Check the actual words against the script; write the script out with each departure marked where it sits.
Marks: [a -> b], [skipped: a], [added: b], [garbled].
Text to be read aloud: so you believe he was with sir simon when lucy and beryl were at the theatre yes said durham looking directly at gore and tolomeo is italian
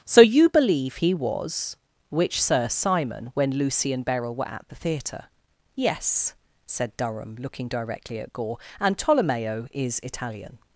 so you believe he was [with -> which] sir simon when lucy and beryl were at the theatre yes said durham looking directly at gore and tolomeo is italian